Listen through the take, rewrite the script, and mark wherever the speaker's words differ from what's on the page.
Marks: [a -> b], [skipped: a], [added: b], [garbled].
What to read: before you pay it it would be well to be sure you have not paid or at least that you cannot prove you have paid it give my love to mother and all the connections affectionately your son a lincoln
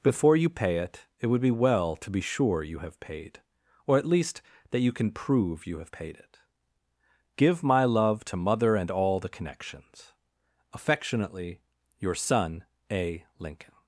before you pay it it would be well to be sure you have [skipped: not] paid or at least that you [cannot -> can] prove you have paid it give my love to mother and all the connections affectionately your son a lincoln